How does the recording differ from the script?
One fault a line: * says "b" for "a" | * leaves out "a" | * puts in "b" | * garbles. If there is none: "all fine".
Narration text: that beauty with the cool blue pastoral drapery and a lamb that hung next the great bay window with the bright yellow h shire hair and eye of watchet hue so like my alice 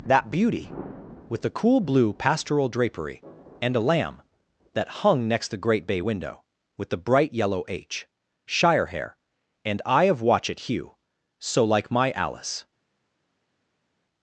all fine